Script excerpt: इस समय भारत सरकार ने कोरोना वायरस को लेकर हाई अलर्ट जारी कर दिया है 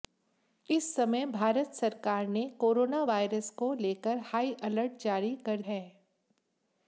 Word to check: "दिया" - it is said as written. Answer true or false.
false